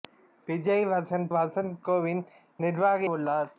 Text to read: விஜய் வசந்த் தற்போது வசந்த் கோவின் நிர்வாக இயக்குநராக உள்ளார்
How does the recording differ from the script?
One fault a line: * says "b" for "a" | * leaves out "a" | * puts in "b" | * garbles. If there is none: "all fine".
* leaves out "தற்போது"
* leaves out "இயக்குநராக"